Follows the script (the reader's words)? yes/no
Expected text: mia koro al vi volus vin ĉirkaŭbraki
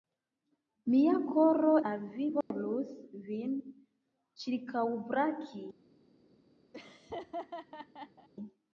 yes